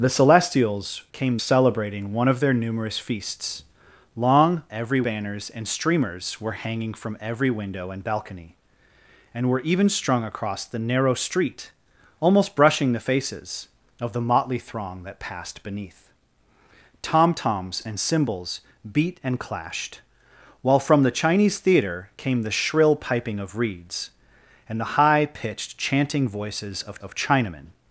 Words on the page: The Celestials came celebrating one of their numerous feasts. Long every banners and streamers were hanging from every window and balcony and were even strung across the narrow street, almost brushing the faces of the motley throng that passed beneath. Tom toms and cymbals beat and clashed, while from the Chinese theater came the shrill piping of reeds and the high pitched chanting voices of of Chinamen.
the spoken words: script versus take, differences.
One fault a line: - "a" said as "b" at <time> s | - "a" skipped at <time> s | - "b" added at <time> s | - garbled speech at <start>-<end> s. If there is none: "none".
none